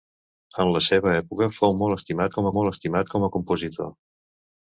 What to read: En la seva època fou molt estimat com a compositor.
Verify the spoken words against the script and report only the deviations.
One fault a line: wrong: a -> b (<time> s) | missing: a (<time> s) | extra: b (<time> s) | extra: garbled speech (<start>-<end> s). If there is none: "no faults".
extra: molt estimat com (2.6 s)